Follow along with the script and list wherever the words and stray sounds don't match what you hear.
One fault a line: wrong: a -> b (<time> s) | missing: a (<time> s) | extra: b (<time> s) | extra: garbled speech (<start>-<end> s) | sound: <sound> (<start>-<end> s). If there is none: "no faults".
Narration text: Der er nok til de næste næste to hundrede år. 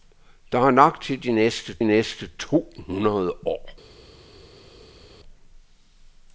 no faults